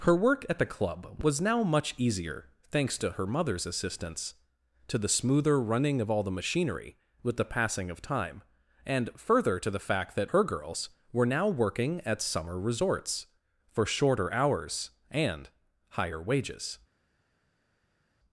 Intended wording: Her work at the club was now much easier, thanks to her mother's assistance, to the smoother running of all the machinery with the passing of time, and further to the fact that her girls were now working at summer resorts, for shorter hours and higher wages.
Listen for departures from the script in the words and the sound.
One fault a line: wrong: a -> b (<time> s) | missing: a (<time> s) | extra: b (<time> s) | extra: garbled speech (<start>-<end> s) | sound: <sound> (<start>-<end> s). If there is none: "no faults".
no faults